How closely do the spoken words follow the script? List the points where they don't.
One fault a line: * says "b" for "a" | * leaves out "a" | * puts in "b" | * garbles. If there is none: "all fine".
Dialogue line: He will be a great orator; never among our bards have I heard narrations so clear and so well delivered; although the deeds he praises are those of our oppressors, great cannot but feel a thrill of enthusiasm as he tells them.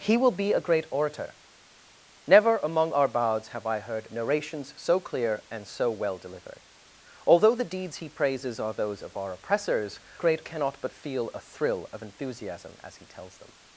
all fine